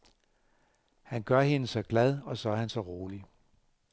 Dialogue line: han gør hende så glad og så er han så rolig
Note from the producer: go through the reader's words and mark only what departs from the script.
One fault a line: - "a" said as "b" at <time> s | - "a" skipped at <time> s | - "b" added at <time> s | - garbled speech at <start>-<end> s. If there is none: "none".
none